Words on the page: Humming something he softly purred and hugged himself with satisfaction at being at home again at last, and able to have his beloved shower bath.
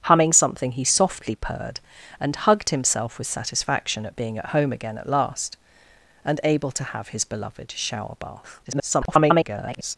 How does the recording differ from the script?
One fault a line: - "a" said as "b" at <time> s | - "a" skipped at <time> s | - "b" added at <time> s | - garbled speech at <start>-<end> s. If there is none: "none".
- garbled speech at 8.6-10.0 s